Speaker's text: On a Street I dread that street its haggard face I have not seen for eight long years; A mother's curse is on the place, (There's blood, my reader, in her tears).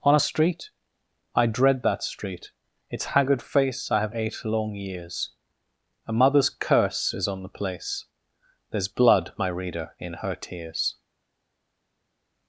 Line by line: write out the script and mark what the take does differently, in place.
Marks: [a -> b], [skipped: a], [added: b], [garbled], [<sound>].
On a Street I dread that street its haggard face I have [skipped: not seen for] eight long years; A mother's curse is on the place, (There's blood, my reader, in her tears).